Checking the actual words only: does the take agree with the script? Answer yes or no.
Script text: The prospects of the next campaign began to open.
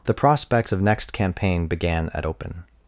no